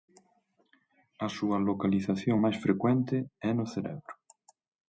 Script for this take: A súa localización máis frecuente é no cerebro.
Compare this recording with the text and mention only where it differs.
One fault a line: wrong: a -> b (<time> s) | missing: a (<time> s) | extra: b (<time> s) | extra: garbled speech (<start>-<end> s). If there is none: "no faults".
no faults